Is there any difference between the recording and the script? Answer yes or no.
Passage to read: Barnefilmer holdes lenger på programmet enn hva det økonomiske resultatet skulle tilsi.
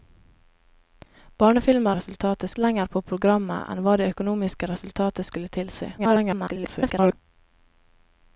yes